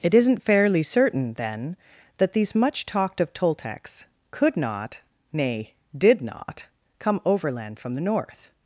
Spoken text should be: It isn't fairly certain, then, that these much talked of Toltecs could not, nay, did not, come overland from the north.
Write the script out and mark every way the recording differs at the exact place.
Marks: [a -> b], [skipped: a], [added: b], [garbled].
It isn't fairly certain, then, that these much talked of Toltecs could not, nay, did not, come overland from the north.